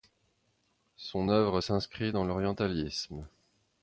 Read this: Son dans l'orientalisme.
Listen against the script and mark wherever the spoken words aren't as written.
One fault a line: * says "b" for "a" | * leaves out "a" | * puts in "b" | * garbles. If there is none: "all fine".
* puts in "œuvre s'inscrit"